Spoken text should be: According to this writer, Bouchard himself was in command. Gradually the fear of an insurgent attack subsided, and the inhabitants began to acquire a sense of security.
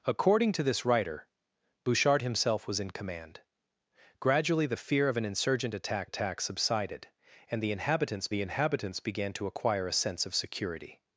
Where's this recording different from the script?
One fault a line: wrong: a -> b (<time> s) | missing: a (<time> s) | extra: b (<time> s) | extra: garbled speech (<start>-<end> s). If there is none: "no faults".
extra: attack (6.0 s)
extra: the inhabitants (8.3 s)